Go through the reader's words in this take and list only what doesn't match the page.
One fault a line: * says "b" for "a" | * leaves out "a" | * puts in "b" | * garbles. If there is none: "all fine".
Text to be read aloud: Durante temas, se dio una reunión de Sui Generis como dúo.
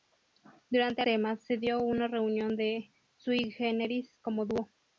all fine